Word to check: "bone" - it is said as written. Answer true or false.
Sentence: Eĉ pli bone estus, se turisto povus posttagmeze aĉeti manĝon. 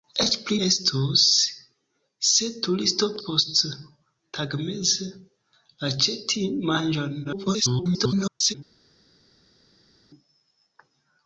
false